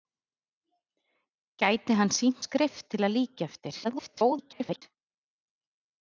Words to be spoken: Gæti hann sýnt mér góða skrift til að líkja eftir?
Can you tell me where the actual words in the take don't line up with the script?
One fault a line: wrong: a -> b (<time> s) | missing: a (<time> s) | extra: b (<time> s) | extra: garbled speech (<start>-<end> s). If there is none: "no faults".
missing: mér góða (2.4 s)
extra: garbled speech (3.8-4.8 s)